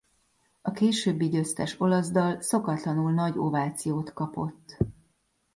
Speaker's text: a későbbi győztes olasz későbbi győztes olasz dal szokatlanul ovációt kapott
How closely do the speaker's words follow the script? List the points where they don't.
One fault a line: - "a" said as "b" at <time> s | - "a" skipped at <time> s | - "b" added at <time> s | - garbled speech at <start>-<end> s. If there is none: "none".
- "későbbi győztes olasz" skipped at 2.1 s
- "nagy" added at 3.1 s